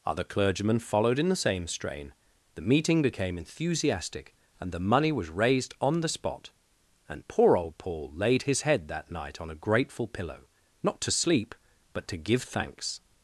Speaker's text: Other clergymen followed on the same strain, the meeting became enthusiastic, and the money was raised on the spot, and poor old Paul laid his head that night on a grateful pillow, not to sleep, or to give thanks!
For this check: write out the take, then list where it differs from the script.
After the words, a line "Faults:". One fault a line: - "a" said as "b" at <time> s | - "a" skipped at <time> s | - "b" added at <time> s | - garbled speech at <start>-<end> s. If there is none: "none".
Other clergymen followed in the same strain, the meeting became enthusiastic, and the money was raised on the spot, and poor old Paul laid his head that night on a grateful pillow, not to sleep, but to give thanks!
Faults:
- "on" said as "in" at 1.2 s
- "or" said as "but" at 11.9 s